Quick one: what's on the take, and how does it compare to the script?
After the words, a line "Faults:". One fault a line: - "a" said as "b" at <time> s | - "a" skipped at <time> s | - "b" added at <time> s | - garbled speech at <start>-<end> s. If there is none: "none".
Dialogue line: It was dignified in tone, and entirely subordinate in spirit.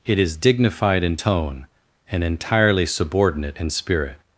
It is dignified in tone, and entirely subordinate in spirit.
Faults:
- "was" said as "is" at 0.2 s